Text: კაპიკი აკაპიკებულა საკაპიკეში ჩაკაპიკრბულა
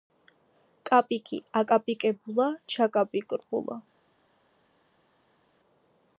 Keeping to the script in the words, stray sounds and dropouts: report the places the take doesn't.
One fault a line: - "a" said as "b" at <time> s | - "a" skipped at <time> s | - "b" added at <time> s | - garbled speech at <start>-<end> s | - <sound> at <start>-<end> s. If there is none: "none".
- "საკაპიკეში" skipped at 2.5 s